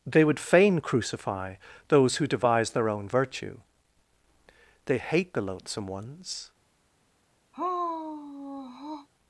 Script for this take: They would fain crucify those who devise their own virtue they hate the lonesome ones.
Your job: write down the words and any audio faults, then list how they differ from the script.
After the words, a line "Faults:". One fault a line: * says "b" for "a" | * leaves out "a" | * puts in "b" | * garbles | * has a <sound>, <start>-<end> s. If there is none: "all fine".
They would fain crucify those who devise their own virtue they hate the loathsome ones.
Faults:
* says "loathsome" for "lonesome"
* has a sigh, 7.5-9.1 s